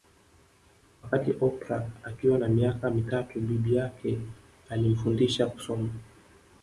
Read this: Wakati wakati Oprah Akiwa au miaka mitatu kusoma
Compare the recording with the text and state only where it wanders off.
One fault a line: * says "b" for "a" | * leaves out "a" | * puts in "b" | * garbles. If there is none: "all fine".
* leaves out "wakati"
* says "na" for "au"
* puts in "bibi yake alimfundisha"